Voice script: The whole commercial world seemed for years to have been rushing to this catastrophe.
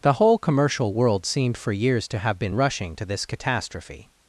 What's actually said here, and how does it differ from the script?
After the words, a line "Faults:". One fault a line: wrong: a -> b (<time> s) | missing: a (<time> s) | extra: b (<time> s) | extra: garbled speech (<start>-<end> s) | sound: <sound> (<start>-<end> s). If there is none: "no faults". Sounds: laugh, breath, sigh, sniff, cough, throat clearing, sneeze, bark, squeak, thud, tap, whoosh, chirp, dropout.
The whole commercial world seemed for years to have been rushing to this catastrophe.
Faults:
no faults